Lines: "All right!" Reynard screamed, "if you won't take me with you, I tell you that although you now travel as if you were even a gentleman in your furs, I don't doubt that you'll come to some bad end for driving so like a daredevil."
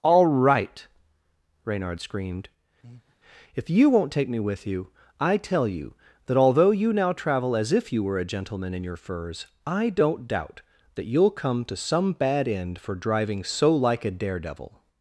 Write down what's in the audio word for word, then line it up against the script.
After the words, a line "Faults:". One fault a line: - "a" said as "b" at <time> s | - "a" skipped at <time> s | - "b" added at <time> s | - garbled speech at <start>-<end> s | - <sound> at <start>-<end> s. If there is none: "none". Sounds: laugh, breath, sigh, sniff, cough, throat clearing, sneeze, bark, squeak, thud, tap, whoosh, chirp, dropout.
"All right!" Reynard screamed, "if you won't take me with you, I tell you that although you now travel as if you were a gentleman in your furs, I don't doubt that you'll come to some bad end for driving so like a daredevil."
Faults:
- breath at 2.8-3.2 s
- "even" skipped at 8.2 s